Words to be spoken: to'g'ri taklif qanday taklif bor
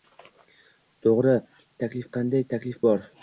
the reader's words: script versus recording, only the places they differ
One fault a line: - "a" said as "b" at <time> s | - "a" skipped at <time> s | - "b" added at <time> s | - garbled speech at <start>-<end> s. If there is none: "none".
none